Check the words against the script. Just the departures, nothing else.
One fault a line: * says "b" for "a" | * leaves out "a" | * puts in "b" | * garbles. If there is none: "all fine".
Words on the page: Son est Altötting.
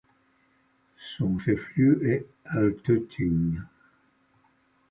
* puts in "chef lieu"